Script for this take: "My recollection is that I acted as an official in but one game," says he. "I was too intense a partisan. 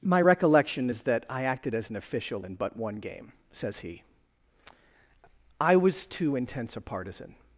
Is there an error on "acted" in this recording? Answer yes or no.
no